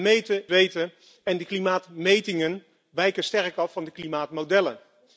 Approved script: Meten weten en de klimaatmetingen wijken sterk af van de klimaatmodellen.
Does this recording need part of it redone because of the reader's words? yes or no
no